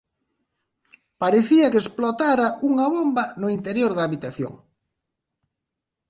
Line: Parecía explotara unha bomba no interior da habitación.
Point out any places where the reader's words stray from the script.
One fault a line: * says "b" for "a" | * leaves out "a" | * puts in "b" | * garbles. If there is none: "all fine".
* puts in "que"